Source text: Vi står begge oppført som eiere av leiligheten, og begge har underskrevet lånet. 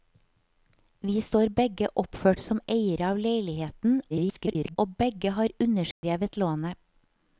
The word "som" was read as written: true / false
true